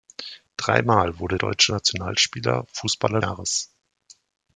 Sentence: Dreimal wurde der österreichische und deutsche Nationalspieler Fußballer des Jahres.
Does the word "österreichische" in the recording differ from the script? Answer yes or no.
yes